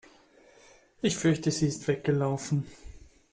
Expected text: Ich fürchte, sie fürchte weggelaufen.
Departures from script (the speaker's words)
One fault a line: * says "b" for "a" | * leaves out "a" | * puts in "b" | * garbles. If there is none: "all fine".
* says "ist" for "fürchte"